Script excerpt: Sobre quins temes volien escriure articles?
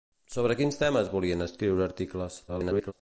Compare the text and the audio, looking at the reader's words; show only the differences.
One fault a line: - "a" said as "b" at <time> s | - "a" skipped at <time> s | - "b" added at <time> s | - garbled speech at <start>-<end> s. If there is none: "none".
- garbled speech at 2.5-2.9 s